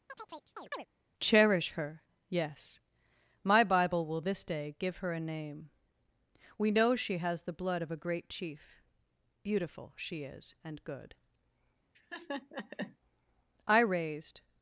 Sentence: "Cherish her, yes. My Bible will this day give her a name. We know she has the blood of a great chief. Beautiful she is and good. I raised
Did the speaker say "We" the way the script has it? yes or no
yes